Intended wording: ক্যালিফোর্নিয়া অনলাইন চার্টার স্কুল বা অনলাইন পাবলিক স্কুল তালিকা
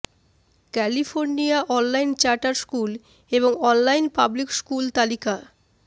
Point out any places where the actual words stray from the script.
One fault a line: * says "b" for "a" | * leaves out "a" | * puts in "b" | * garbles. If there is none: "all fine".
* says "এবং" for "বা"